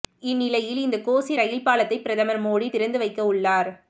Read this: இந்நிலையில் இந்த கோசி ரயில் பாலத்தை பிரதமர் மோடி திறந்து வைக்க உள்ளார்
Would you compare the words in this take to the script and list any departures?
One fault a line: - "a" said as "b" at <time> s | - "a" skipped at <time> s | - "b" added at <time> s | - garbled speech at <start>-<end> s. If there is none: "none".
none